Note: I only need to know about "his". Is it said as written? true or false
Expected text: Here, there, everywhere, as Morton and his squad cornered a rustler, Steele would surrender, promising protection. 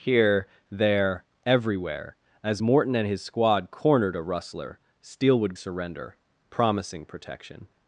true